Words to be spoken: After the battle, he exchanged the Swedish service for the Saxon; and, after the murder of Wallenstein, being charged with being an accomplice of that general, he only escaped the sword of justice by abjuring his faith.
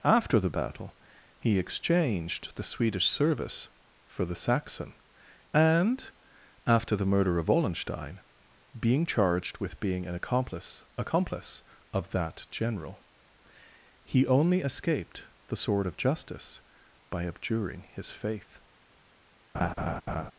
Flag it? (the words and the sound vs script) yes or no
yes